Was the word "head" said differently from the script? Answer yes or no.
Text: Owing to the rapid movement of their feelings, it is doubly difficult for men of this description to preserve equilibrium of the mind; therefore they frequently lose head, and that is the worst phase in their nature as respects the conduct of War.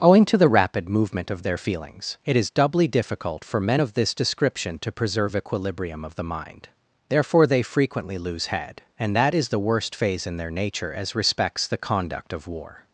no